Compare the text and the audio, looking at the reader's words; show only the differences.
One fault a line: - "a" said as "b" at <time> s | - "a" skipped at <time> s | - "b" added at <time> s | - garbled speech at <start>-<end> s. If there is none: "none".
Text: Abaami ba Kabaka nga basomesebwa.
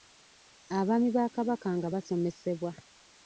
none